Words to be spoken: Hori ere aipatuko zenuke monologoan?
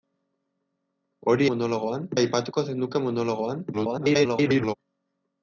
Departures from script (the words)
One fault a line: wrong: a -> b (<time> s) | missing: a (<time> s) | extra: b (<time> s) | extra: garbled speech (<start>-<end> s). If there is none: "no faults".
wrong: ere -> monologoan (1.5 s)
extra: garbled speech (3.7-4.7 s)